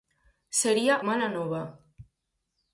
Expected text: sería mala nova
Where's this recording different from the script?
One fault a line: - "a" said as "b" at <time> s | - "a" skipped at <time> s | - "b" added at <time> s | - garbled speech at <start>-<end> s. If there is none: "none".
none